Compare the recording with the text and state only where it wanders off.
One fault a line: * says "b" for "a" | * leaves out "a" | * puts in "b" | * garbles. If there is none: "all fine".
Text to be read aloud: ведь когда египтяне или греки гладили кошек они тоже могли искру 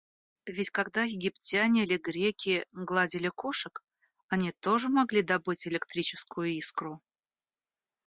* puts in "добыть электрическую"